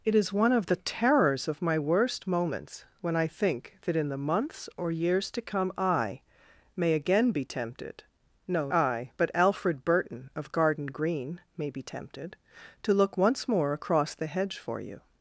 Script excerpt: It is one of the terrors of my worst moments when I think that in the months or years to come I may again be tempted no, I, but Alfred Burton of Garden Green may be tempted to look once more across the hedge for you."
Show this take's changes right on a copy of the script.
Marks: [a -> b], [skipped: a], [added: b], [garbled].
It is one of the terrors of my worst moments when I think that in the months or years to come I may again be tempted no, I, but Alfred Burton of Garden Green may be tempted to look once more across the hedge for you."